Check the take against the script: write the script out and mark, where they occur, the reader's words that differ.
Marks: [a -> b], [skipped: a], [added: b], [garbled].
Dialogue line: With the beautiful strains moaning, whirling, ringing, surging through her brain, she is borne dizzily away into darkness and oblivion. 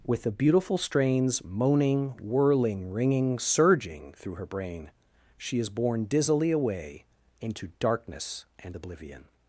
With the beautiful strains moaning, whirling, ringing, surging through her brain, she is borne dizzily away into darkness and oblivion.